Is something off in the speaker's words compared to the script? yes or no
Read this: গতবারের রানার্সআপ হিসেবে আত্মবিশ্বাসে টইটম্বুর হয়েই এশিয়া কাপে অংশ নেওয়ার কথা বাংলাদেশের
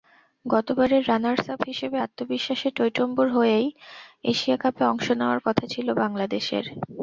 yes